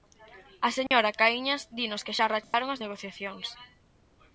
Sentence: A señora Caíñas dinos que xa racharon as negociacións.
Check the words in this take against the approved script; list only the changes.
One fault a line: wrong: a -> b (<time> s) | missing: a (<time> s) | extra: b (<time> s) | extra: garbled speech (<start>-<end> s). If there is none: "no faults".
no faults